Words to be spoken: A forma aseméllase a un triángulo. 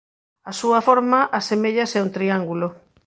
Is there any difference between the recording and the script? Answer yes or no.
yes